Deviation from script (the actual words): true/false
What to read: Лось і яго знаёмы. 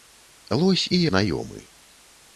true